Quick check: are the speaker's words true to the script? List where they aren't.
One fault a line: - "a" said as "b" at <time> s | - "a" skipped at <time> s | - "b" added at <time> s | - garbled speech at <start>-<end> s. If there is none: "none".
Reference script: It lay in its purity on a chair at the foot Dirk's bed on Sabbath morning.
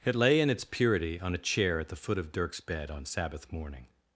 - "of" added at 2.2 s